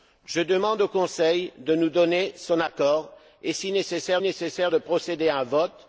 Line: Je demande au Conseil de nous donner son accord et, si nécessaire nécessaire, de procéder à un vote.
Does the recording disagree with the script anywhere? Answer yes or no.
no